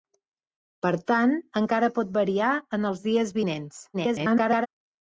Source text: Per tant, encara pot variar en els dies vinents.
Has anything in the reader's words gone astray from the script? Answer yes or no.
yes